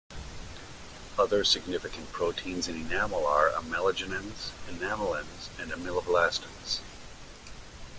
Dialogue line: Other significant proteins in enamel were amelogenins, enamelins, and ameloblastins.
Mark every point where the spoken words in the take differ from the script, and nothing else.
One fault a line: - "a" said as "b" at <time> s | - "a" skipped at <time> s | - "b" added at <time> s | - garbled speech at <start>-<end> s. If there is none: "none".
- "were" said as "are" at 3.3 s